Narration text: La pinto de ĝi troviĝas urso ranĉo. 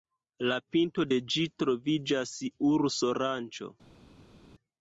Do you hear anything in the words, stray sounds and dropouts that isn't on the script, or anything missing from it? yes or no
no